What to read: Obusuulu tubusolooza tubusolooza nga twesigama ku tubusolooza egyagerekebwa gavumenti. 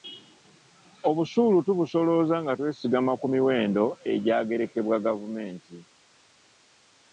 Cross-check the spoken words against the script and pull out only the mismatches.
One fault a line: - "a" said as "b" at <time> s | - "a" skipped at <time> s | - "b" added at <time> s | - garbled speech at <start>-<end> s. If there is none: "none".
- "tubusolooza" skipped at 2.4 s
- "tubusolooza" said as "miwendo" at 3.3 s